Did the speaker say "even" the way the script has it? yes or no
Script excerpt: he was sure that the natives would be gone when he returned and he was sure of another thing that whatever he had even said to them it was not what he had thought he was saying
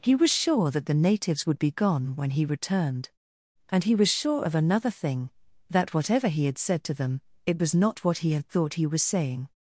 no